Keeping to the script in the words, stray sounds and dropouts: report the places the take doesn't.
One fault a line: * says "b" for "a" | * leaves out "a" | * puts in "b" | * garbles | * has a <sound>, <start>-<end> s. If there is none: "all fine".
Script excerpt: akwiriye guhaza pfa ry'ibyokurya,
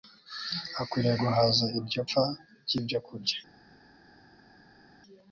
* puts in "iryo"